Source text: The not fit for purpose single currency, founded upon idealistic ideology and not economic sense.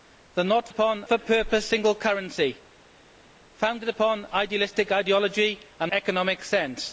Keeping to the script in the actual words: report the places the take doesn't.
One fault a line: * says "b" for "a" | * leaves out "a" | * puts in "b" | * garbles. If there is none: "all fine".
* says "upon" for "fit"
* leaves out "not"